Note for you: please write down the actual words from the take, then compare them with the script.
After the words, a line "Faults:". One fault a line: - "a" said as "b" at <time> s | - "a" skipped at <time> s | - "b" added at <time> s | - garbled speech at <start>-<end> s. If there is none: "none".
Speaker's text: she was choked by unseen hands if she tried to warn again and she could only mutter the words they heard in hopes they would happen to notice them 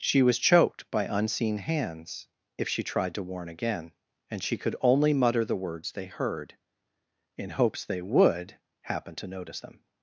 she was choked by unseen hands if she tried to warn again and she could only mutter the words they heard in hopes they would happen to notice them
Faults:
none